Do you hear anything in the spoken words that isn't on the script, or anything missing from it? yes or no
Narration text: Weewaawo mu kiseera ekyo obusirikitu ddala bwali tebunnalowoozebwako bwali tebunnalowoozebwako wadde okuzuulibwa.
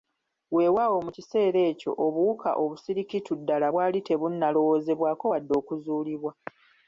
yes